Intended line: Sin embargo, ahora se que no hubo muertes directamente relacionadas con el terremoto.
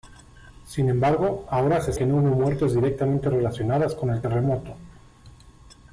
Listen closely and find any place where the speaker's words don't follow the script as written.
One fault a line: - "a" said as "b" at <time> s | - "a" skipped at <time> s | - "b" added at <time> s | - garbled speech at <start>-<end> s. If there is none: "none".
none